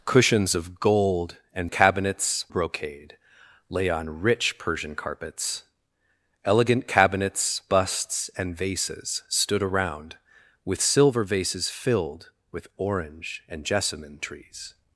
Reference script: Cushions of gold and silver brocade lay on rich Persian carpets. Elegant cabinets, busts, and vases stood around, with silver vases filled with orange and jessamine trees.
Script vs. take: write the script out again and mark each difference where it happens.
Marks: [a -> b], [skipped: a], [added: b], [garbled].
Cushions of gold and [silver -> cabinets] brocade lay on rich Persian carpets. Elegant cabinets, busts, and vases stood around, with silver vases filled with orange and jessamine trees.